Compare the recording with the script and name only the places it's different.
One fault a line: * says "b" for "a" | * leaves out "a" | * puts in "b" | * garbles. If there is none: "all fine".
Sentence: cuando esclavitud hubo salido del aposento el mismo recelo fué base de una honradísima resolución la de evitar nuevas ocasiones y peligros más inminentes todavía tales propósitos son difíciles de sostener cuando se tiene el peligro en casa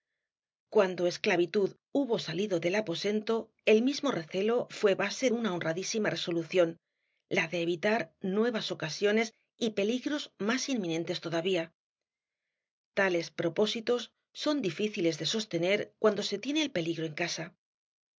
* leaves out "de"